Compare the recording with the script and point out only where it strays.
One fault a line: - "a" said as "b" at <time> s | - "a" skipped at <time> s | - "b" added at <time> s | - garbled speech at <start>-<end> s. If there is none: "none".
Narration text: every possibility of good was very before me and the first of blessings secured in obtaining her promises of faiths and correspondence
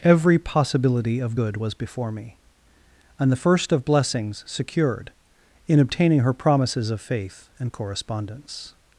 - "very" skipped at 1.7 s
- "faiths" said as "faith" at 7.0 s